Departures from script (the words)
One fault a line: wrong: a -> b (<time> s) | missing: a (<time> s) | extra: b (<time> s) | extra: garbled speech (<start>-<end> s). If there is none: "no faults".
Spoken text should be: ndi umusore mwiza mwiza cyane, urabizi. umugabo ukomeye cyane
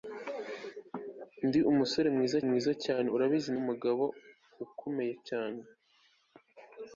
no faults